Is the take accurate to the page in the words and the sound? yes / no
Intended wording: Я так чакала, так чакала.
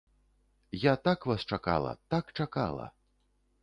no